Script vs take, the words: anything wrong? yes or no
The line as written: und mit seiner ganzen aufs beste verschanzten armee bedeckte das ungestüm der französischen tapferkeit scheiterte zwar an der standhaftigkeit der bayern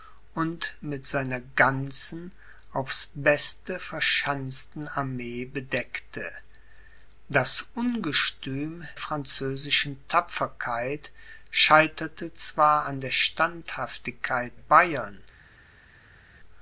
yes